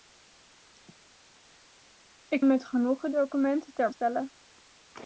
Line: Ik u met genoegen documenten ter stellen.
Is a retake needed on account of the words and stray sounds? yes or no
no